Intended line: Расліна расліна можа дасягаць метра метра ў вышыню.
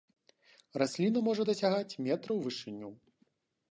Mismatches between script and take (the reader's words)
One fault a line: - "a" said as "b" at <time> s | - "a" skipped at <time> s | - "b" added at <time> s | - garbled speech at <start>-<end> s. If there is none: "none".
- "расліна" skipped at 1.2 s
- "метра" skipped at 2.3 s